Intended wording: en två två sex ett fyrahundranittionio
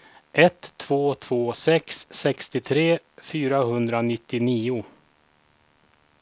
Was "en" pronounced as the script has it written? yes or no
no